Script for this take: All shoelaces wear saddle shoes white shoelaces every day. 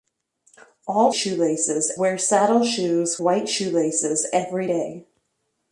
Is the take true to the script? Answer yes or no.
yes